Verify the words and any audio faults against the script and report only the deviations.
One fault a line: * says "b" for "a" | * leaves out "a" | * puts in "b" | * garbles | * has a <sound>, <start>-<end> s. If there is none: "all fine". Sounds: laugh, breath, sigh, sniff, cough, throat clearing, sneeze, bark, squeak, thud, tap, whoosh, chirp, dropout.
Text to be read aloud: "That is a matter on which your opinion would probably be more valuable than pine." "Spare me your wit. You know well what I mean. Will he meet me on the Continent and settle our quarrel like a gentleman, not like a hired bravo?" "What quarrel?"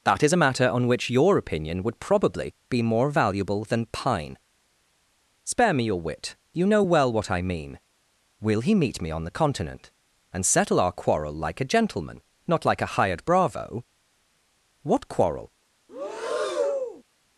* has a breath, 15.9-17.0 s